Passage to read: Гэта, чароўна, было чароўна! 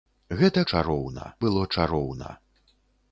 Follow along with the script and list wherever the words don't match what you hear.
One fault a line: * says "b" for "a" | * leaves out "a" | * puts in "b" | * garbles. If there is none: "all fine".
all fine